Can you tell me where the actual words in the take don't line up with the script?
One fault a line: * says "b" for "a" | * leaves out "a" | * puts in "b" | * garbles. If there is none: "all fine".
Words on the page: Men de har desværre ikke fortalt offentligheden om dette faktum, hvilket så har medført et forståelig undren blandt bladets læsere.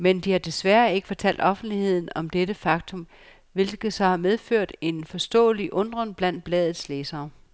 * says "en" for "et"